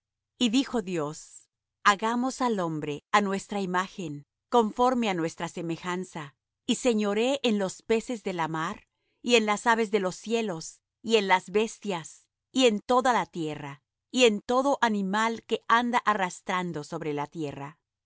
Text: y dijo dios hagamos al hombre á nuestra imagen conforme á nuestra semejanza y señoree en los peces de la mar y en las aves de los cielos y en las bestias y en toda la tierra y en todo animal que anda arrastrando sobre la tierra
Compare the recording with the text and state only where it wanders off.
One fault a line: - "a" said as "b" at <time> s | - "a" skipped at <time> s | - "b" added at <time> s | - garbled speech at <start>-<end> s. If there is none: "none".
none